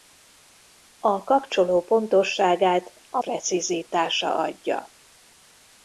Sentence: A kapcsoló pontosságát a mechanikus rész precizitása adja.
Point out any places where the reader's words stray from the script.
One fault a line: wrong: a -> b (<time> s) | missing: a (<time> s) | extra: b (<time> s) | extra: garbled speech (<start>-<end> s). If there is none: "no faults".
missing: mechanikus rész (3.2 s)